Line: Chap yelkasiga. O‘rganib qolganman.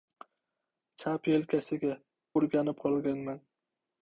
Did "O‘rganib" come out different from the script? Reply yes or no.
no